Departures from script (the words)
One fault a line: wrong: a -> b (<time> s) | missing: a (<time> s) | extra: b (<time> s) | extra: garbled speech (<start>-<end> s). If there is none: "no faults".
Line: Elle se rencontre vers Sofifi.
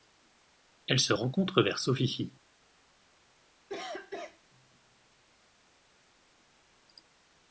no faults